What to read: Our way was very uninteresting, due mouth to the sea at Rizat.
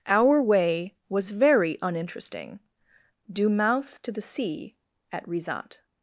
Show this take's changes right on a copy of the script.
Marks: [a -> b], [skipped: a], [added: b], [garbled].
Our way was very uninteresting, due mouth to the sea at Rizat.